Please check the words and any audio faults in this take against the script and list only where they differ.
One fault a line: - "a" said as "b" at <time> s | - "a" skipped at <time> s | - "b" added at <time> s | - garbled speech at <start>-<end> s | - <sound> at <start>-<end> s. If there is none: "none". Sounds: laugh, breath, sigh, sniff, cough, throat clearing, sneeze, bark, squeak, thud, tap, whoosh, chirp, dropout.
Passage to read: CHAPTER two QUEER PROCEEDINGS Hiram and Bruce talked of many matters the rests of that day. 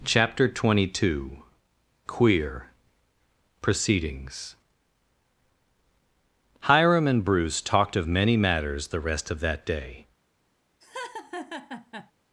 - "twenty" added at 0.5 s
- "rests" said as "rest" at 9.0 s
- laugh at 10.8-12.1 s